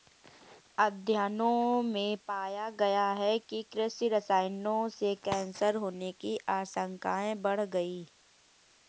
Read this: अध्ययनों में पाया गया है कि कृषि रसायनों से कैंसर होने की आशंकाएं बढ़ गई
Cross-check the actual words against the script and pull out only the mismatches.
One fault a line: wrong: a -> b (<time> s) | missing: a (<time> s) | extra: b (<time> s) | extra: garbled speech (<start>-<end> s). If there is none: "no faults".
no faults